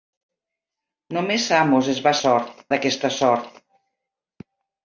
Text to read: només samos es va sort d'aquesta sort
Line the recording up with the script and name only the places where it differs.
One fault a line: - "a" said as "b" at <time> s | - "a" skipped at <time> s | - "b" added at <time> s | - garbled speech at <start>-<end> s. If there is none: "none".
none